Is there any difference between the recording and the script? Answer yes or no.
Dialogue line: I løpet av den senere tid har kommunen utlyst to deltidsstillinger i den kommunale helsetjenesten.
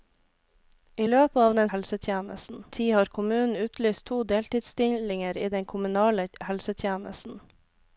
yes